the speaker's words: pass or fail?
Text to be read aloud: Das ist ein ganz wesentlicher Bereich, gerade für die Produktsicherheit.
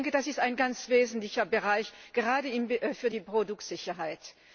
pass